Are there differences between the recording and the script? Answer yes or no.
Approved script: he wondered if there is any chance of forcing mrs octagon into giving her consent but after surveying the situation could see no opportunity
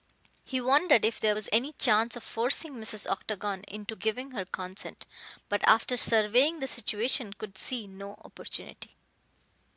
yes